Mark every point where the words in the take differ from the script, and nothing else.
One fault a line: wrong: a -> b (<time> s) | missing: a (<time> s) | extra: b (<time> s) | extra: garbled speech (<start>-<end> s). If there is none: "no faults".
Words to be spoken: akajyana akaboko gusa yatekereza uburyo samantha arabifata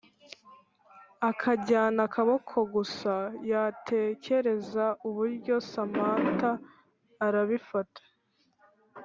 no faults